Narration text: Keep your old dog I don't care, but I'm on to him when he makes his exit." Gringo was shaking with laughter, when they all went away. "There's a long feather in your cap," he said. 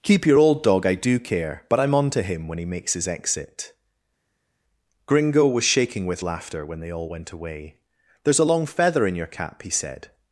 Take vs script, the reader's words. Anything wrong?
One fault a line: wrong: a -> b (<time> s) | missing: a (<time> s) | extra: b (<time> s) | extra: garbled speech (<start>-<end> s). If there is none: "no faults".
wrong: don't -> do (1.0 s)